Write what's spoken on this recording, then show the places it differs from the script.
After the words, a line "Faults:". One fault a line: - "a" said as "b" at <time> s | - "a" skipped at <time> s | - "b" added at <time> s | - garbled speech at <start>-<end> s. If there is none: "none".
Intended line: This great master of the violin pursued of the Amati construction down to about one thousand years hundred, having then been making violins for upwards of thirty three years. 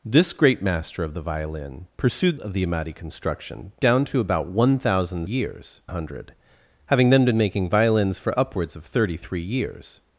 This great master of the violin pursued of the Amati construction down to about one thousand years hundred, having then been making violins for upwards of thirty three years.
Faults:
none